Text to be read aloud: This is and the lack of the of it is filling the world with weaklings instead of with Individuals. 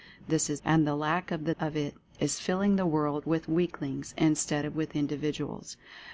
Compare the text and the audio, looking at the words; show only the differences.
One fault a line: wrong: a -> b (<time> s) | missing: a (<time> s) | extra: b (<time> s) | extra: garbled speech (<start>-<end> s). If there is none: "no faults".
no faults